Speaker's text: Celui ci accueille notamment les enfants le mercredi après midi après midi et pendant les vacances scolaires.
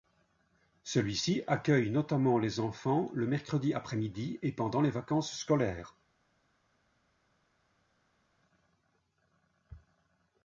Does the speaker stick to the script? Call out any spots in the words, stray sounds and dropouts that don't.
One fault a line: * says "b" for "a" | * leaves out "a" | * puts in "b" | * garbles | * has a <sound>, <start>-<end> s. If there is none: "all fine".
* leaves out "après midi"